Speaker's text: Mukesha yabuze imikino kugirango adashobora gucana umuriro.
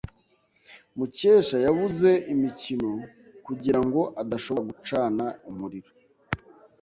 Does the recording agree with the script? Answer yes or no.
yes